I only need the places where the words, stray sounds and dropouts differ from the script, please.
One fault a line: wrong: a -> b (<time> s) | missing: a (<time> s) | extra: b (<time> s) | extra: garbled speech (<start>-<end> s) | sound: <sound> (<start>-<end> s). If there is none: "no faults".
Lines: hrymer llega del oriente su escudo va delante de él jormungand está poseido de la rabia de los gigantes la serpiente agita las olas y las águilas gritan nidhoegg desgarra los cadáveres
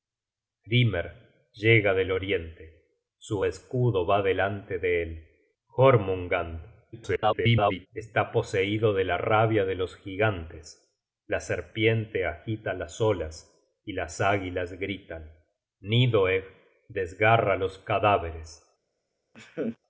extra: garbled speech (6.9-7.9 s)
sound: laugh (19.3-19.8 s)